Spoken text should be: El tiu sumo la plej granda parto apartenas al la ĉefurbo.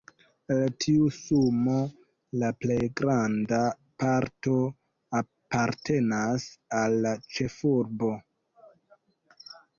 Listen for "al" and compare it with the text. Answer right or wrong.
right